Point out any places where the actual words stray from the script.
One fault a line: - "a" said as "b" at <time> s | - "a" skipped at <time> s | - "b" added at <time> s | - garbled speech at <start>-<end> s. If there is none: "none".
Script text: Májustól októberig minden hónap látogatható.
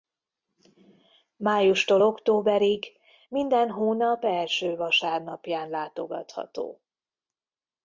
- "első vasárnapján" added at 4.2 s